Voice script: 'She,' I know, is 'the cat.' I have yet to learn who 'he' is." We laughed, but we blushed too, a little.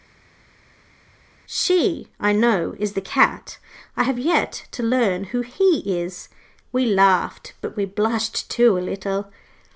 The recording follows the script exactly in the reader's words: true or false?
true